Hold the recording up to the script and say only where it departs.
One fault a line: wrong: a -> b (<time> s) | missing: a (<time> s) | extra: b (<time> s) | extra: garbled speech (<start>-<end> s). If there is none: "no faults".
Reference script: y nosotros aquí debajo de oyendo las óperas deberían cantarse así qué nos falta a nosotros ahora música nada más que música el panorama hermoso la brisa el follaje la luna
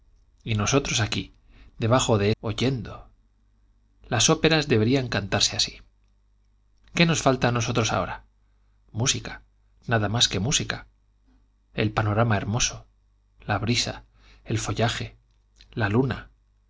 no faults